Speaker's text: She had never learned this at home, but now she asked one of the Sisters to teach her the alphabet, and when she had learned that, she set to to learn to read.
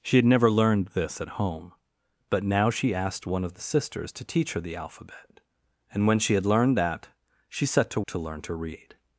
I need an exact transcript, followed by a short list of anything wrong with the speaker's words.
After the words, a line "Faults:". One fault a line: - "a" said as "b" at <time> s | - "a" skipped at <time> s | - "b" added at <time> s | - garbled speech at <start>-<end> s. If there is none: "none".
She had never learned this at home, but now she asked one of the Sisters to teach her the alphabet, and when she had learned that, she set to to learn to read.
Faults:
none